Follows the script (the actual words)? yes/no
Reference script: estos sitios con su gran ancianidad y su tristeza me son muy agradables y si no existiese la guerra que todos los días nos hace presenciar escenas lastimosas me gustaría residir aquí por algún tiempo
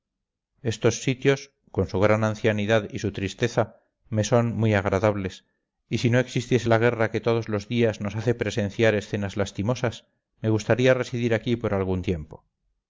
yes